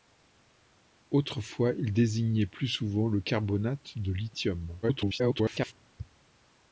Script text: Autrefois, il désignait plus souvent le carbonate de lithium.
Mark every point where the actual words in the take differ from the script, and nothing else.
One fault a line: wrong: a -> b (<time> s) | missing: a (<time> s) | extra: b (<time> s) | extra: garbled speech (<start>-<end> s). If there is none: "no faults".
extra: garbled speech (4.8-5.7 s)